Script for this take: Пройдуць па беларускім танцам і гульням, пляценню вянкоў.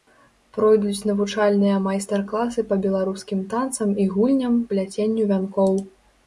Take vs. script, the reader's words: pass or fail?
fail